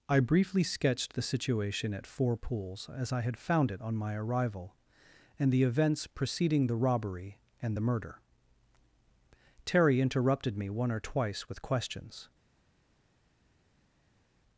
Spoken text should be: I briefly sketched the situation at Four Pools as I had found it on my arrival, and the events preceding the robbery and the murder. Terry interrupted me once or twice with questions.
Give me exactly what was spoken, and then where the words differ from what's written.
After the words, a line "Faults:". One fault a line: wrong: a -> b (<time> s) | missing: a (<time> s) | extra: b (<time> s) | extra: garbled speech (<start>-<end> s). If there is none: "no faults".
I briefly sketched the situation at Four Pools as I had found it on my arrival, and the events preceding the robbery and the murder. Terry interrupted me one or twice with questions.
Faults:
wrong: once -> one (10.7 s)